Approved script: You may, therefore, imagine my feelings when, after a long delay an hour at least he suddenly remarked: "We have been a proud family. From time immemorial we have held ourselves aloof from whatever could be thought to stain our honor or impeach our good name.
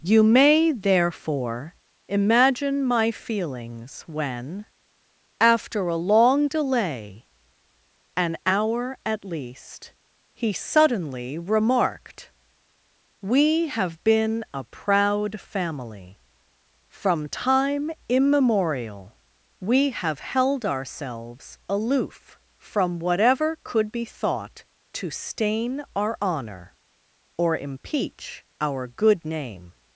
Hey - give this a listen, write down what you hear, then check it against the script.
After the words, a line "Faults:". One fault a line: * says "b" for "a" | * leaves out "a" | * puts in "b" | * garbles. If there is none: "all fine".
You may, therefore, imagine my feelings when, after a long delay an hour at least he suddenly remarked: "We have been a proud family. From time immemorial we have held ourselves aloof from whatever could be thought to stain our honor or impeach our good name.
Faults:
all fine